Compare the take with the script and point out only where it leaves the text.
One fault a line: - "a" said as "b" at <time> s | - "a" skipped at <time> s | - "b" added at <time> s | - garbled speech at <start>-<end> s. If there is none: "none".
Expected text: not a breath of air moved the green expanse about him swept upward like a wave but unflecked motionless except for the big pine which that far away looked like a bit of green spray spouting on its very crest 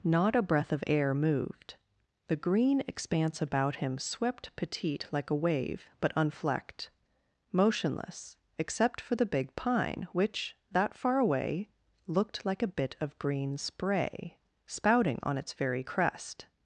- "upward" said as "petite" at 4.5 s